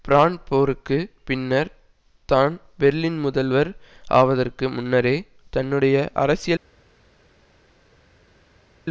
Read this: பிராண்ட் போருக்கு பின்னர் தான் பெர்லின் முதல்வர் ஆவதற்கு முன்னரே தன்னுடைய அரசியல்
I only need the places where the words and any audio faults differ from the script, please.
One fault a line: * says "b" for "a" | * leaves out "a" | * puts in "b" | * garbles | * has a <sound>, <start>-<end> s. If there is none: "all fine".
all fine